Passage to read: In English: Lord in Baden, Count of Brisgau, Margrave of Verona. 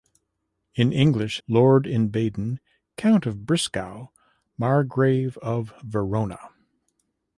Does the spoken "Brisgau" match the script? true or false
true